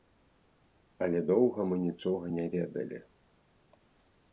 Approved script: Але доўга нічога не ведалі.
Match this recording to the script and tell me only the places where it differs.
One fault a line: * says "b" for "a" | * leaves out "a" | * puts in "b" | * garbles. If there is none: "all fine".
* puts in "мы"